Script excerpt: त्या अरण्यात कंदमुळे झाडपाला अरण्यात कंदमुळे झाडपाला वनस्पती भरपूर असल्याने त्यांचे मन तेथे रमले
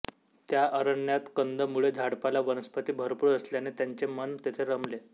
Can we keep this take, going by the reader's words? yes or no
no